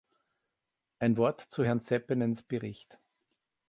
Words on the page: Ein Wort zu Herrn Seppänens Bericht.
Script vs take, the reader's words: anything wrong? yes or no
no